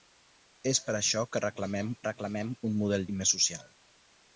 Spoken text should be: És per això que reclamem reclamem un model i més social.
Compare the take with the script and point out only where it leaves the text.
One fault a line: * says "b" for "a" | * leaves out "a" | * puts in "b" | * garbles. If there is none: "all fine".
all fine